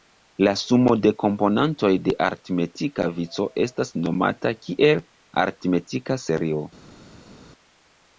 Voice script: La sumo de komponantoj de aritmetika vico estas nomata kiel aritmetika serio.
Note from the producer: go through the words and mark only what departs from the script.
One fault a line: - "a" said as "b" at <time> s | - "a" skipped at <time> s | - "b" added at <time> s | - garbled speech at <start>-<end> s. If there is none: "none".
none